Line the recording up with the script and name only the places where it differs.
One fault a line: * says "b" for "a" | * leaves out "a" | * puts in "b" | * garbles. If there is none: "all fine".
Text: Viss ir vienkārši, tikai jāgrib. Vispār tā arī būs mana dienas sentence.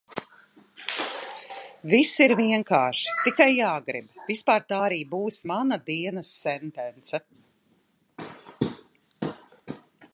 all fine